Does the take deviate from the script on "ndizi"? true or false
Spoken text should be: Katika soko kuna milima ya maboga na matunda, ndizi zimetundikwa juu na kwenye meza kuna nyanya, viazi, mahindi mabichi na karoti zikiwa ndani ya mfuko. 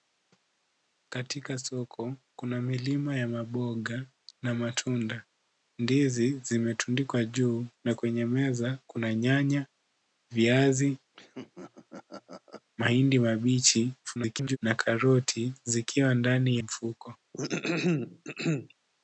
false